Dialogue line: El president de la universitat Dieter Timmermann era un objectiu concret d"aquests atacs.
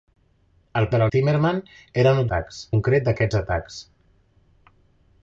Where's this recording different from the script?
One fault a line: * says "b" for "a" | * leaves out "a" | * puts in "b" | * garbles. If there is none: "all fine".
* leaves out "president"
* leaves out "universitat Dieter"
* says "atacs" for "objectiu"